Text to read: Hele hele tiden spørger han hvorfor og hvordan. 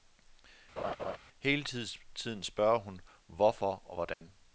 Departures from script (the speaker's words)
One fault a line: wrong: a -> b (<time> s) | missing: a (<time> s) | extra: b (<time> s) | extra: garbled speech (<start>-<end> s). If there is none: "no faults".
missing: hele (1.6 s)
wrong: han -> hun (2.8 s)